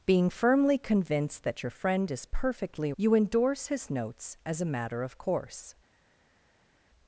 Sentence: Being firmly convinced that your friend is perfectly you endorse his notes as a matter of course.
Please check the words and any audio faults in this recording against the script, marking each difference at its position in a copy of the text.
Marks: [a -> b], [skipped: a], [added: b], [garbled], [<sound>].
Being firmly convinced that your friend is perfectly you endorse his notes as a matter of course.